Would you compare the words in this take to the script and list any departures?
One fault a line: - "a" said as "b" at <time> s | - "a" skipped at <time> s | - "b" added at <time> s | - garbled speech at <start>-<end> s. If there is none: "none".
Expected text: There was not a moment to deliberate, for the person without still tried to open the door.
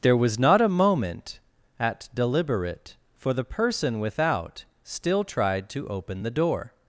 - "to" said as "at" at 1.8 s